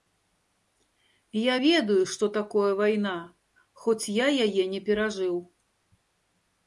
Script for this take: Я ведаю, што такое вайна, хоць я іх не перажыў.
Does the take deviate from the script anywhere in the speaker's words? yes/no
yes